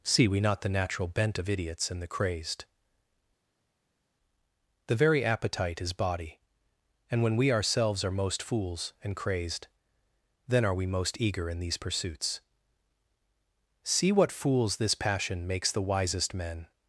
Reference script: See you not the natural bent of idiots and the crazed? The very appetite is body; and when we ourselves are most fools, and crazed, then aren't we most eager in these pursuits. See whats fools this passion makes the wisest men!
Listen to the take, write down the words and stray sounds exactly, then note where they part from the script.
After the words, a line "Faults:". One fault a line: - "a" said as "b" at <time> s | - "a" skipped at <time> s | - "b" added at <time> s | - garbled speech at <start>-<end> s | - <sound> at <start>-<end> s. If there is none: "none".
See we not the natural bent of idiots and the crazed? The very appetite is body; and when we ourselves are most fools, and crazed, then are we most eager in these pursuits. See what fools this passion makes the wisest men!
Faults:
- "you" said as "we" at 0.3 s
- "aren't" said as "are" at 10.6 s
- "whats" said as "what" at 14.1 s